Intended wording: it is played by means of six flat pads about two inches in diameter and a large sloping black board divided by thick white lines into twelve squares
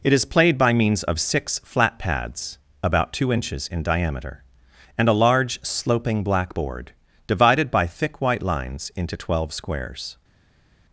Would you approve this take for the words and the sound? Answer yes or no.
yes